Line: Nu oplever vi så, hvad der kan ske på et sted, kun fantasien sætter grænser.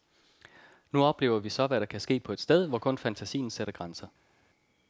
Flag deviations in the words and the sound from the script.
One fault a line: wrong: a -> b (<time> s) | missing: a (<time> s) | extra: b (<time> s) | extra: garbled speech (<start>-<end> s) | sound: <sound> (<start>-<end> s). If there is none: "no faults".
extra: hvor (2.7 s)